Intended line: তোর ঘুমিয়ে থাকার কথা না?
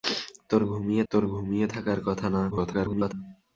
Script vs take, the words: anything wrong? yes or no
yes